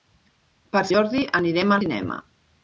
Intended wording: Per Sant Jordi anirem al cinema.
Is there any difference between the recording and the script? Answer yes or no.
yes